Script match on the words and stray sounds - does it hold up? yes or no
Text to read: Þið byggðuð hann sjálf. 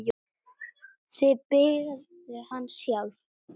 yes